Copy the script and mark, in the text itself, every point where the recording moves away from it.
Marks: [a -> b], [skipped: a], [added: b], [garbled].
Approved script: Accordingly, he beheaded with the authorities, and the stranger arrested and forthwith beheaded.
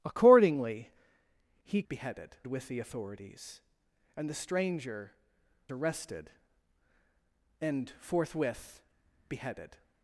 Accordingly, he beheaded with the authorities, and the stranger arrested and forthwith beheaded.